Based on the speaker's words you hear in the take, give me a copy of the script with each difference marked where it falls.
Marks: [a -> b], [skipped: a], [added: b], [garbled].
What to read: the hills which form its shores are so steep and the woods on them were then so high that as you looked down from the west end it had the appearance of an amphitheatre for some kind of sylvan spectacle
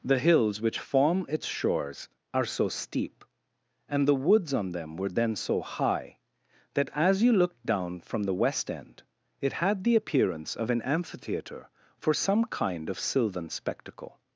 the hills which form its shores are so steep and the woods on them were then so high that as you looked down from the west end it had the appearance of an amphitheatre for some kind of sylvan spectacle